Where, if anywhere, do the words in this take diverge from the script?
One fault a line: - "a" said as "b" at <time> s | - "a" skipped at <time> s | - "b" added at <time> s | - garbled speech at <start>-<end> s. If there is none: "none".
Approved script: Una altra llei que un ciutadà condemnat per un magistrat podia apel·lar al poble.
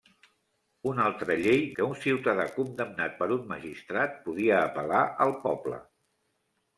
none